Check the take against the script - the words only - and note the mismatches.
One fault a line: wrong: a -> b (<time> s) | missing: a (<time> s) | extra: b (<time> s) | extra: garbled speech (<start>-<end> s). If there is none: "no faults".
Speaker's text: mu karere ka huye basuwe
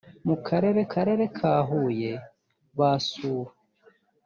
extra: karere (0.9 s)